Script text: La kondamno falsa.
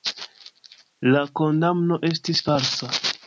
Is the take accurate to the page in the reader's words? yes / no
no